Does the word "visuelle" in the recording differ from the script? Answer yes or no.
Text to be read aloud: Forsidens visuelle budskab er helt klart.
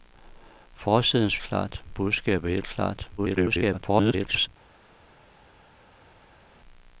yes